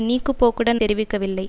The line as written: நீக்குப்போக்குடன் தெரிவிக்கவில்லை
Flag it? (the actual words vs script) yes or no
no